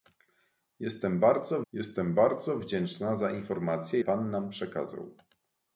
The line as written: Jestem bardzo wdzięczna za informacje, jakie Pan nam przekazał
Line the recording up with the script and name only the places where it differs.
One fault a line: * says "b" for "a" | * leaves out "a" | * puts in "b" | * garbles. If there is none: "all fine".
* puts in "jestem bardzo"
* leaves out "jakie"